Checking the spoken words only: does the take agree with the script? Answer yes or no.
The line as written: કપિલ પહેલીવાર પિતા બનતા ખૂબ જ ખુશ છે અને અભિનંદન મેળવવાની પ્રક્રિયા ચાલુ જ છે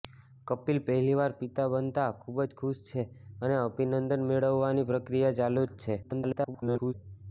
no